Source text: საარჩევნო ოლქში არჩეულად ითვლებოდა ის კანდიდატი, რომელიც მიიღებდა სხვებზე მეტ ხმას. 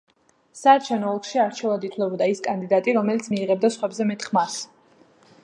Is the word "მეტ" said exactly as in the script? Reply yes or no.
yes